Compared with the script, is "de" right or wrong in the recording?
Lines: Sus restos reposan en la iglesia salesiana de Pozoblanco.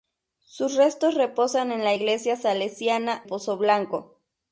wrong